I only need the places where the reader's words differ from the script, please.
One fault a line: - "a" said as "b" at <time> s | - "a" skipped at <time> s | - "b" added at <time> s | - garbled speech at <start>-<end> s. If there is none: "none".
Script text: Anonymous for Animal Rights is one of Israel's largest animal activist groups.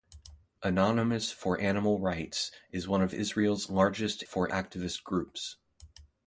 - "animal" said as "for" at 4.2 s